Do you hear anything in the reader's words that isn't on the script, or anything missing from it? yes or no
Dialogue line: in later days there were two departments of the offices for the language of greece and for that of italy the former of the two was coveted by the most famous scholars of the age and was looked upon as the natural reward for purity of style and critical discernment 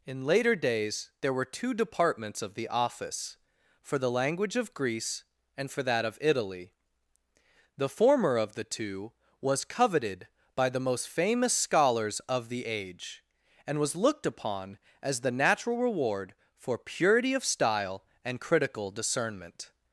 yes